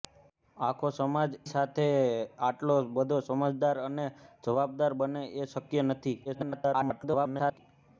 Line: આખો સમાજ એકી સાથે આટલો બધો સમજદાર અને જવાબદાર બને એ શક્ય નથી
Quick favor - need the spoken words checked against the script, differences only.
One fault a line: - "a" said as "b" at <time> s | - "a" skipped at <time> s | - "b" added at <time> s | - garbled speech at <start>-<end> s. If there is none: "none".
- "એકી" skipped at 1.3 s
- garbled speech at 6.2-7.6 s